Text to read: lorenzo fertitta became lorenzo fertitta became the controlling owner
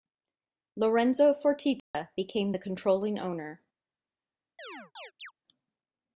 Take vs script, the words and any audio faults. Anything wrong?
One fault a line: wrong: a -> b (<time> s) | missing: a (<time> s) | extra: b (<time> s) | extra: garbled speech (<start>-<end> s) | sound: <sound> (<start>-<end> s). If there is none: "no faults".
sound: dropout (1.8-1.9 s)
missing: lorenzo fertitta became (2.5 s)
sound: chirp (4.6-5.3 s)